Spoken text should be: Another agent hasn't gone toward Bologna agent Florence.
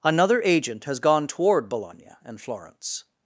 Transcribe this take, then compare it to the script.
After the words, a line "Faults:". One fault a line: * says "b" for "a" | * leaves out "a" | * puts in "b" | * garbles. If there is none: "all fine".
Another agent has gone toward Bologna and Florence.
Faults:
* says "has" for "hasn't"
* says "and" for "agent"